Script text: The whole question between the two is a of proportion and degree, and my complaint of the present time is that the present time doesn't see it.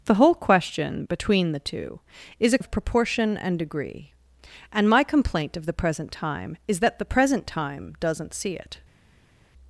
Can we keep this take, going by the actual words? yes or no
yes